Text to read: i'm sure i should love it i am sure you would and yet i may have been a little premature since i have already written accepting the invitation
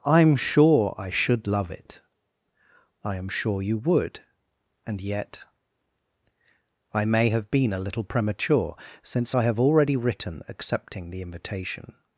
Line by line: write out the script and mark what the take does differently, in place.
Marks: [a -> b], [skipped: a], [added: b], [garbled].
i'm sure i should love it i am sure you would and yet i may have been a little premature since i have already written accepting the invitation